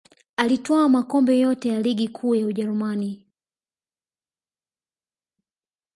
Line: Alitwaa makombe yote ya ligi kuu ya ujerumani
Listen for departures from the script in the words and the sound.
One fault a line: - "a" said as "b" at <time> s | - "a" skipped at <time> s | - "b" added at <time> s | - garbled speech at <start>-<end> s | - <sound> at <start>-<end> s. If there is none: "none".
none